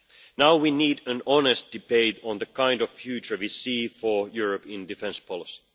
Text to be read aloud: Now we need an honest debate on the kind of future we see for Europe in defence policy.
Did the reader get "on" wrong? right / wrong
right